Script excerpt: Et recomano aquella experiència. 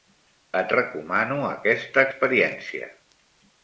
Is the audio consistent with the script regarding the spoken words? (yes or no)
no